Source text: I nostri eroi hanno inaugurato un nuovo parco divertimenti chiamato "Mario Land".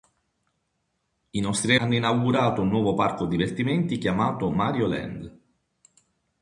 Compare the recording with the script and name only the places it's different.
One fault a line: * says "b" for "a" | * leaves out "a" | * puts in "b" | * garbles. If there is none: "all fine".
* leaves out "eroi"